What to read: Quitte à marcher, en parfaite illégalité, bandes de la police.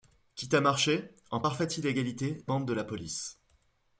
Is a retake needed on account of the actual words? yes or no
no